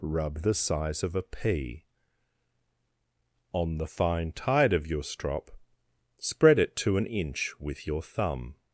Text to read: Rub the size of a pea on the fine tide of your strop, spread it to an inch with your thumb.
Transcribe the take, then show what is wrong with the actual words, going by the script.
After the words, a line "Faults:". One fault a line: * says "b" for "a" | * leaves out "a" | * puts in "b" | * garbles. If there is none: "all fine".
Rub the size of a pea on the fine tide of your strop, spread it to an inch with your thumb.
Faults:
all fine